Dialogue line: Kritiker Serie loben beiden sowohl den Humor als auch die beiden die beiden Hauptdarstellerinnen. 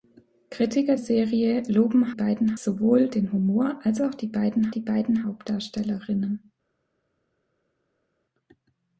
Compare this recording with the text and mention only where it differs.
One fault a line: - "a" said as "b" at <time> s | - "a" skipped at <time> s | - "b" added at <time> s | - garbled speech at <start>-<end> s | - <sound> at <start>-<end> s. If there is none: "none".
none